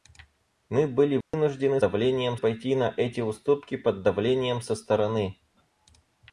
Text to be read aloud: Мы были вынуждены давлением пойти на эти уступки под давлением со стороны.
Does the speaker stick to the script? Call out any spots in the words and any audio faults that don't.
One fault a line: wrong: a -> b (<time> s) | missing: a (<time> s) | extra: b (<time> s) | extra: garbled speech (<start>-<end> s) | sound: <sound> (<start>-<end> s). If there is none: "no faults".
sound: dropout (1.2-1.3 s)